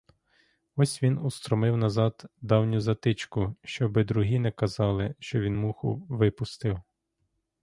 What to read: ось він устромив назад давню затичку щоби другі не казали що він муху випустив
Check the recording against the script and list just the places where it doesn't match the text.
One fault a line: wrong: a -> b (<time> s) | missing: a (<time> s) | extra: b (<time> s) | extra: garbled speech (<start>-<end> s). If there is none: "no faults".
no faults